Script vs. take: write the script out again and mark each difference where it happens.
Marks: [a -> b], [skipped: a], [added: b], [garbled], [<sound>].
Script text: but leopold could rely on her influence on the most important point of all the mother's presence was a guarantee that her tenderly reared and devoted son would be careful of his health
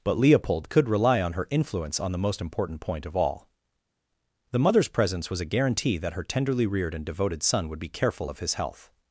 but leopold could rely on her influence on the most important point of all the mother's presence was a guarantee that her tenderly reared and devoted son would be careful of his health